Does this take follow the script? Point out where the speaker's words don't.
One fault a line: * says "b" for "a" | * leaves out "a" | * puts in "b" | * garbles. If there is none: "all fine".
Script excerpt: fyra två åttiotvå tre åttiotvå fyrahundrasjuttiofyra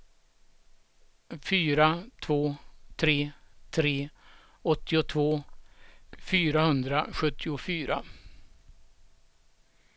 * says "tre" for "åttiotvå"